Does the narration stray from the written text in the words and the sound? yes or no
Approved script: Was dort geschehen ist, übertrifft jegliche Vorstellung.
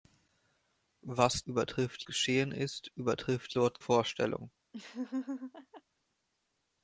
yes